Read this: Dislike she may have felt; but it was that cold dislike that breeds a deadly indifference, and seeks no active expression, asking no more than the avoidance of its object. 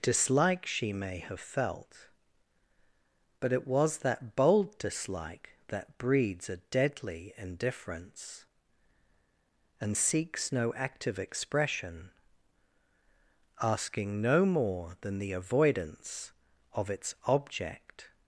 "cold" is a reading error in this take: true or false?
true